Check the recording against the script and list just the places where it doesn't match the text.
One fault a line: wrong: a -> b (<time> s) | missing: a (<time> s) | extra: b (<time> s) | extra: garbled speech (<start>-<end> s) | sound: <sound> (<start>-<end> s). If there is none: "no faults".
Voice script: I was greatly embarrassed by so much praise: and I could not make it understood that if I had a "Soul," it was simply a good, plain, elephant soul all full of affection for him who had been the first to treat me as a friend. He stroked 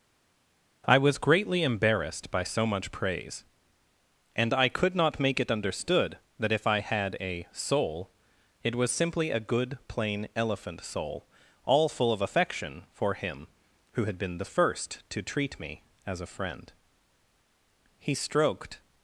no faults